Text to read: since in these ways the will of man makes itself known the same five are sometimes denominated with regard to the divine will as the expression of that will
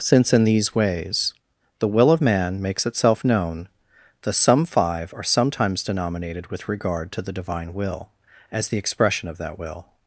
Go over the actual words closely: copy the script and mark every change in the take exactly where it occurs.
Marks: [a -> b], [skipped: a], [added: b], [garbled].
since in these ways the will of man makes itself known the [same -> some] five are sometimes denominated with regard to the divine will as the expression of that will